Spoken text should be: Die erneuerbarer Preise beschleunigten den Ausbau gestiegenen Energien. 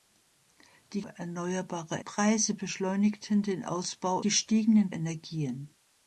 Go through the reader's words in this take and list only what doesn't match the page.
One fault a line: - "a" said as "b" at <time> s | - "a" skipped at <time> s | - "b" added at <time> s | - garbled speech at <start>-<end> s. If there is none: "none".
none